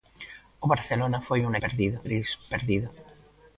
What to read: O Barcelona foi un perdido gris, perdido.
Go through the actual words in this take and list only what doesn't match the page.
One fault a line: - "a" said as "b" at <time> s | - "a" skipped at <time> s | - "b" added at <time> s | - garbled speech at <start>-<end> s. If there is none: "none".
none